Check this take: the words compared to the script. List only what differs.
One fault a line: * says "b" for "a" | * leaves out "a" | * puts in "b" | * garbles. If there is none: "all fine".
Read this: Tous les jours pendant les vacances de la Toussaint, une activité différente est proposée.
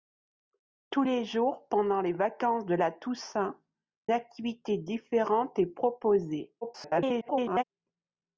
* leaves out "une"
* garbles